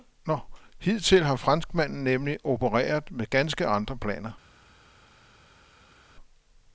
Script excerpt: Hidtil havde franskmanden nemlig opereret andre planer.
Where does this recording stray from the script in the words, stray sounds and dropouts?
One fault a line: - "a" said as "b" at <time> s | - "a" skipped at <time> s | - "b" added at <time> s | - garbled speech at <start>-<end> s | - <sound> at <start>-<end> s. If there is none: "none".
- "havde" said as "har" at 1.2 s
- "med ganske" added at 3.1 s